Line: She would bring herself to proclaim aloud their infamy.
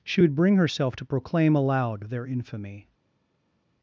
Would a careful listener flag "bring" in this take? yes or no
no